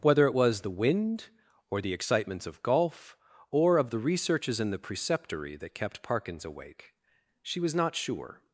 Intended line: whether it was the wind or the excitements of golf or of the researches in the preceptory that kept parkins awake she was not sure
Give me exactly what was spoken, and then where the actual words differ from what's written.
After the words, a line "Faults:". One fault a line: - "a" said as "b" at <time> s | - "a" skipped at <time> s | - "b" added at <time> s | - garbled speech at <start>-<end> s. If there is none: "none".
whether it was the wind or the excitements of golf or of the researches in the preceptory that kept parkins awake she was not sure
Faults:
none